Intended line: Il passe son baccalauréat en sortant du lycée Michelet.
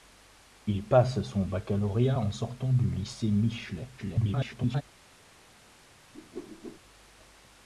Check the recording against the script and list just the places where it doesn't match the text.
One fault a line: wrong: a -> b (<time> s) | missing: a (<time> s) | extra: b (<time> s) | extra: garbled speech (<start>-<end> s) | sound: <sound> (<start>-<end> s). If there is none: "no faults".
extra: garbled speech (4.0-4.8 s)
sound: whoosh (6.1-6.8 s)